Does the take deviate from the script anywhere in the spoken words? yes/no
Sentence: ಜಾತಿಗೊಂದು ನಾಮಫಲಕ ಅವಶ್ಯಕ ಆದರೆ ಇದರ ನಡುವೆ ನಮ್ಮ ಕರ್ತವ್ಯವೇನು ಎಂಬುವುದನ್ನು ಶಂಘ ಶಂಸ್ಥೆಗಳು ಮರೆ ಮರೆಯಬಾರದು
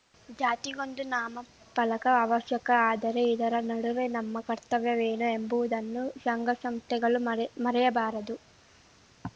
no